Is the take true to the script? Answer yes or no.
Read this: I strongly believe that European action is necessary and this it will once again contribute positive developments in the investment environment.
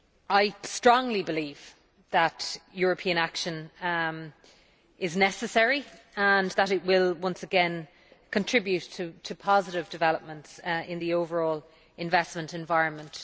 no